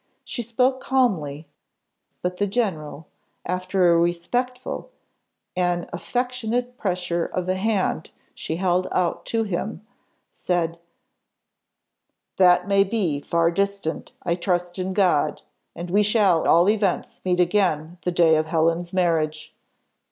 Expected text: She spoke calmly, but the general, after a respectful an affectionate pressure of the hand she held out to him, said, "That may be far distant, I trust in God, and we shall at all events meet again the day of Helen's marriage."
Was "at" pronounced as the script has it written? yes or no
no